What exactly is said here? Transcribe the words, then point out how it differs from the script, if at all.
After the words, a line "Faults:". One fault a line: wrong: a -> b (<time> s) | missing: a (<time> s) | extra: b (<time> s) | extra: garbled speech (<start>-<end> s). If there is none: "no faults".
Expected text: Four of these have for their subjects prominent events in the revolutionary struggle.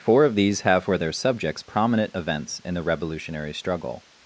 Four of these have for their subjects prominent events in the revolutionary struggle.
Faults:
no faults